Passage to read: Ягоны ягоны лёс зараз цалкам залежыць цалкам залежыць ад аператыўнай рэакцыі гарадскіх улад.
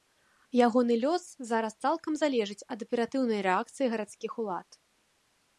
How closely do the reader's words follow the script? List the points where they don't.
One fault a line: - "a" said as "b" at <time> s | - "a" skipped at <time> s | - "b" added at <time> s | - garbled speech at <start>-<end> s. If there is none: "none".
- "ягоны" skipped at 0.9 s
- "цалкам залежыць" skipped at 2.7 s